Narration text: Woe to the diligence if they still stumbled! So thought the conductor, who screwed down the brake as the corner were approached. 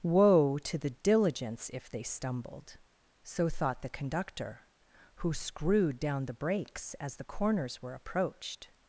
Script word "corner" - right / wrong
wrong